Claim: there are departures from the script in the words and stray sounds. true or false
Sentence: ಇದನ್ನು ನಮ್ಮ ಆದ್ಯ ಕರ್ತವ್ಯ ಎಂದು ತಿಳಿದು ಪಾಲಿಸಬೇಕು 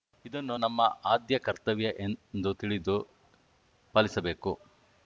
false